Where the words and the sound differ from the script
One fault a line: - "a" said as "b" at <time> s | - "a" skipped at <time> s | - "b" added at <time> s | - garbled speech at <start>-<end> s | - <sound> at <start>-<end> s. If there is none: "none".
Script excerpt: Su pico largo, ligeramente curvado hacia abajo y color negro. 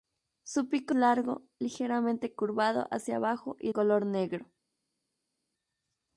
none